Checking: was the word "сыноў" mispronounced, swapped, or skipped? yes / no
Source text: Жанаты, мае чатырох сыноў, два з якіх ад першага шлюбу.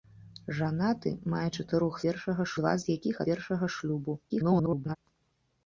yes